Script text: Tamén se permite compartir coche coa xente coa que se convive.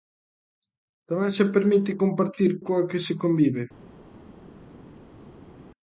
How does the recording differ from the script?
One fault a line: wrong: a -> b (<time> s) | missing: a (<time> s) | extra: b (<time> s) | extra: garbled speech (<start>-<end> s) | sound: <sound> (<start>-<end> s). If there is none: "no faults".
missing: coche coa xente (2.5 s)